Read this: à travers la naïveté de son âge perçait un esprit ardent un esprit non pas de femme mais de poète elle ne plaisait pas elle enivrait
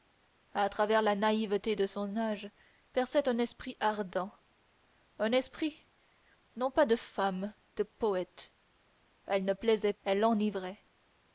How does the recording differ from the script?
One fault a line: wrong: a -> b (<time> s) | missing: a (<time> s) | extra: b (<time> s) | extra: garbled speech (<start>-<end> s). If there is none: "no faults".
missing: mais (7.5 s)
missing: pas (9.9 s)